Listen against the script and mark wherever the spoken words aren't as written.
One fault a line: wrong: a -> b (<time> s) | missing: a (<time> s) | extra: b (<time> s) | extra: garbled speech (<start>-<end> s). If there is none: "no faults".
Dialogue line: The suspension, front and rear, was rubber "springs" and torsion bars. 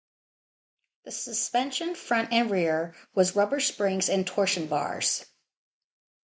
no faults